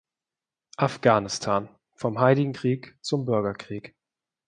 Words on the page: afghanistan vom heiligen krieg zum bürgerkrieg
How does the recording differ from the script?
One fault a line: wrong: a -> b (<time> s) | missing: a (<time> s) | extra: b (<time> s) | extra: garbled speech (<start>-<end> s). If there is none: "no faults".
no faults